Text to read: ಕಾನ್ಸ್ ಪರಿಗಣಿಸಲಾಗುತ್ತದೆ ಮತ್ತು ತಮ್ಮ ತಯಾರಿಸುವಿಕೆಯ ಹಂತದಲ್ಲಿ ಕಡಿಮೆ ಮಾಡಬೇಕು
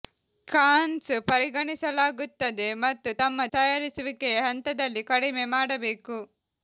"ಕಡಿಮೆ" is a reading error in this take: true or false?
false